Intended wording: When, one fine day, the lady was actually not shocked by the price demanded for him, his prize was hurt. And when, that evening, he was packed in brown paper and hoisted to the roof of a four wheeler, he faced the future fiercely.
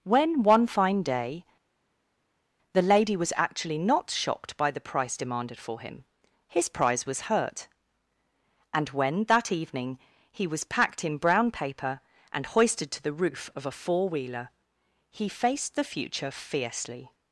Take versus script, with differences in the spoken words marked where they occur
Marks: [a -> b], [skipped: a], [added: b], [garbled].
When, one fine day, the lady was actually not shocked by the price demanded for him, his prize was hurt. And when, that evening, he was packed in brown paper and hoisted to the roof of a four wheeler, he faced the future fiercely.